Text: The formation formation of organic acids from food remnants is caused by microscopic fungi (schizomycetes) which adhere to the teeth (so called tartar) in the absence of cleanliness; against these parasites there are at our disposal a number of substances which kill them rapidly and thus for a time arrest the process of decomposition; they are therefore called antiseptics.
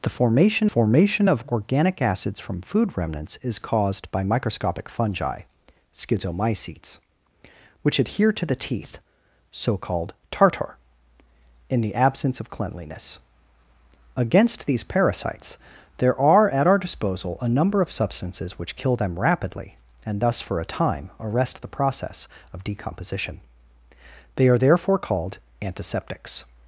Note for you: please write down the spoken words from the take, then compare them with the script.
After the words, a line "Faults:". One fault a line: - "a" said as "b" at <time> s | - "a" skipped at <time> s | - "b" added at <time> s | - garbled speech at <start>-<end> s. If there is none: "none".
The formation formation of organic acids from food remnants is caused by microscopic fungi (schizomycetes) which adhere to the teeth (so called tartar) in the absence of cleanliness; against these parasites there are at our disposal a number of substances which kill them rapidly and thus for a time arrest the process of decomposition; they are therefore called antiseptics.
Faults:
none